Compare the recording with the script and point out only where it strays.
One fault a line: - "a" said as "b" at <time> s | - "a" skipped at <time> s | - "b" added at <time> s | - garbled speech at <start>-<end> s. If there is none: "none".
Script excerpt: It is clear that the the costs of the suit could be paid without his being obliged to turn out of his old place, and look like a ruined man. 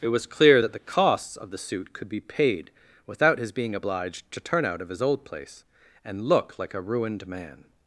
- "is" said as "was" at 0.1 s
- "the" skipped at 0.9 s